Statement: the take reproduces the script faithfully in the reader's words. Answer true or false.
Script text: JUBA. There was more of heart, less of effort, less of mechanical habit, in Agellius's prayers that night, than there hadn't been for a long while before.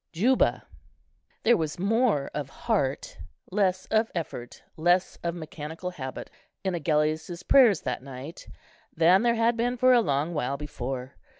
false